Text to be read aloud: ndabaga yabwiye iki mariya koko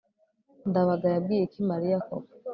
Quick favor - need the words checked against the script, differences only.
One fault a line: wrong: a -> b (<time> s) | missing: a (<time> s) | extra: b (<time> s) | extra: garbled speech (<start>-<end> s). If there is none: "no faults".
no faults